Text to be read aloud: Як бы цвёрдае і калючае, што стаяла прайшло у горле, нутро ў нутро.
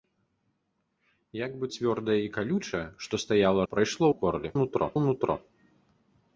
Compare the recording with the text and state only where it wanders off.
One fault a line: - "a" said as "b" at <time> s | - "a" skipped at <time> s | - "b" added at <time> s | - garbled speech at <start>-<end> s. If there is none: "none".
none